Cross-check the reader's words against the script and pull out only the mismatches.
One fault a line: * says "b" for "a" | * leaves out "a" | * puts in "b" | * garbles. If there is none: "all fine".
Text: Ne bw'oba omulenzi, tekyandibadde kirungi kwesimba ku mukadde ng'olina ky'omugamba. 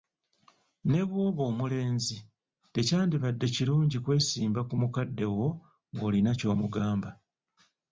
* puts in "wo"